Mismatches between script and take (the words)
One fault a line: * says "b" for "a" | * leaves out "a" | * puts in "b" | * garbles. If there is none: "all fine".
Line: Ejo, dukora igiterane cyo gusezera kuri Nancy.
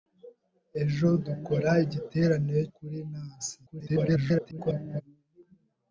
* leaves out "cyo gusezera"
* garbles